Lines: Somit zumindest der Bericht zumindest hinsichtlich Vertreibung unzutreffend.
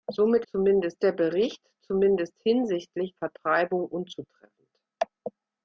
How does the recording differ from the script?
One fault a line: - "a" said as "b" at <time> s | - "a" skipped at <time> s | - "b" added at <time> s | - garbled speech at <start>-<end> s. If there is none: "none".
none